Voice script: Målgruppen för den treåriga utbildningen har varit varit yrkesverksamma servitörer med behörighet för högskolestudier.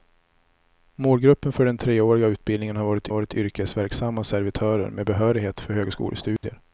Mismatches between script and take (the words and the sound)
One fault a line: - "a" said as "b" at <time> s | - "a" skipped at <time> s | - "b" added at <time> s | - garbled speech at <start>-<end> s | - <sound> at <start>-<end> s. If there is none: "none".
- dropout at 6.4-6.4 s